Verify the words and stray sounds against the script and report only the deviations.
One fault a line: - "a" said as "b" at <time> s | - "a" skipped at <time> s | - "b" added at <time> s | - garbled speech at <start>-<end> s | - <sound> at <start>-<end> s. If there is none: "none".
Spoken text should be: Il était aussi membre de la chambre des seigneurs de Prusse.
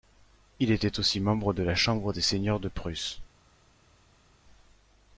none